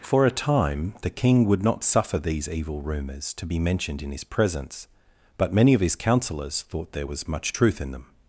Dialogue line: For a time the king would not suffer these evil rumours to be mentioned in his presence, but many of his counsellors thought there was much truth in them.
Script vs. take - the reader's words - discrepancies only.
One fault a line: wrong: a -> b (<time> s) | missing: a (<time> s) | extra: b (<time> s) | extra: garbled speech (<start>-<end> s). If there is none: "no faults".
no faults